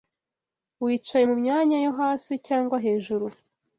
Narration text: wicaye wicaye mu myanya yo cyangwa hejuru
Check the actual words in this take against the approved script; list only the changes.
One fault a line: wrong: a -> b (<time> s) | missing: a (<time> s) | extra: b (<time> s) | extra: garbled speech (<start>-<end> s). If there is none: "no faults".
missing: wicaye (1.2 s)
extra: hasi (2.0 s)